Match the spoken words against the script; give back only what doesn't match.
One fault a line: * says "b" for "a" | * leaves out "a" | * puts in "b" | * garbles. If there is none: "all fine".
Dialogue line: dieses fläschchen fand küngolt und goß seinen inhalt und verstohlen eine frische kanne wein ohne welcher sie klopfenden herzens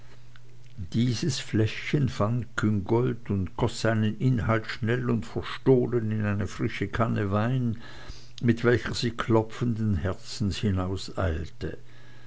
* puts in "schnell"
* puts in "in"
* says "mit" for "ohne"